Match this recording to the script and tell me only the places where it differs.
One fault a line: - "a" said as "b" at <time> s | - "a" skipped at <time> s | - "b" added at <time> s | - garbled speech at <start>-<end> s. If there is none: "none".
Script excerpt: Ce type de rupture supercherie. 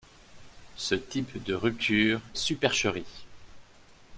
none